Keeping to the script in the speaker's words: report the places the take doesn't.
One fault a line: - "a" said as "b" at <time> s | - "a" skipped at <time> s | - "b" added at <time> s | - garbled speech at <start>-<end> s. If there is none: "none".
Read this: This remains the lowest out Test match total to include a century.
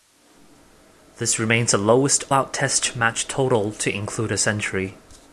none